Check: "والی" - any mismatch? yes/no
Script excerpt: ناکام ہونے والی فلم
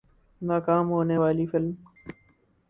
no